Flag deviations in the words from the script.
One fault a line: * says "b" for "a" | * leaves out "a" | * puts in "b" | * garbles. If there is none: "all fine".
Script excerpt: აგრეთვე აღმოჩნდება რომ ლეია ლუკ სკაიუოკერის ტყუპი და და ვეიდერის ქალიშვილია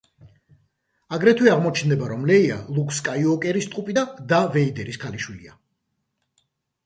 all fine